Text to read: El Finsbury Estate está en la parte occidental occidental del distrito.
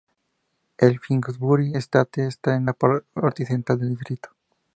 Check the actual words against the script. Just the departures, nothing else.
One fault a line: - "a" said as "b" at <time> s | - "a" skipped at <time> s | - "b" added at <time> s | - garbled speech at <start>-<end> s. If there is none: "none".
- "occidental" skipped at 3.8 s